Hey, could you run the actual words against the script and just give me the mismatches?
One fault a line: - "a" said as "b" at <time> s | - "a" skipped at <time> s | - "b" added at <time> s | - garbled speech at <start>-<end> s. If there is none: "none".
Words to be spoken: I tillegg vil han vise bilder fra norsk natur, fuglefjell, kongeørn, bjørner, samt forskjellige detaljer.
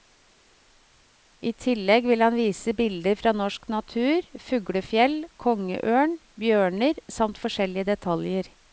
none